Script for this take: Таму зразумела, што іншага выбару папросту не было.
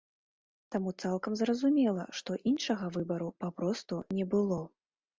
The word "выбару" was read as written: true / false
true